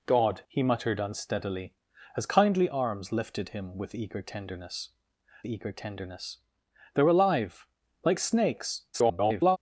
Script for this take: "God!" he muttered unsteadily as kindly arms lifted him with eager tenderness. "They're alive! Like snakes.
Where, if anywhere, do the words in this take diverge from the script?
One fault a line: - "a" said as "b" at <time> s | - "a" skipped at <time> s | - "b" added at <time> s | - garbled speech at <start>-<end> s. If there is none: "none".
- "eager tenderness" added at 5.4 s
- garbled speech at 8.9-9.6 s